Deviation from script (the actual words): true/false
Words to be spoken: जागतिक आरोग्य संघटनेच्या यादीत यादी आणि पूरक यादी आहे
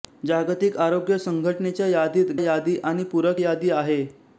false